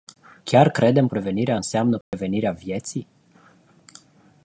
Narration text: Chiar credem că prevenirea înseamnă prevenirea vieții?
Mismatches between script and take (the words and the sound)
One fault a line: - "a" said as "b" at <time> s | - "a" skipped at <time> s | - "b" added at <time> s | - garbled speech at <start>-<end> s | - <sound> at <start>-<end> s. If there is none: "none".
- "că" skipped at 1.1 s
- dropout at 2.0-2.1 s